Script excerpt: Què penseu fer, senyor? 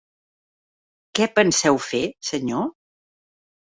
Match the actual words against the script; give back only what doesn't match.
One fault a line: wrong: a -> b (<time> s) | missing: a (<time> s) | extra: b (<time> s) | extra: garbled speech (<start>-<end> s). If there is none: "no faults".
no faults